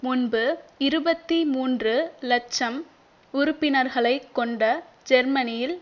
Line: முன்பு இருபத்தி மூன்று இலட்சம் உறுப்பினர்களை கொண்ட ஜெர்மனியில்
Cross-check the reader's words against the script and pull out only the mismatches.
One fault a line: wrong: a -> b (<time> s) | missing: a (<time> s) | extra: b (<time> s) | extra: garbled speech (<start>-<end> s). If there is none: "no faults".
no faults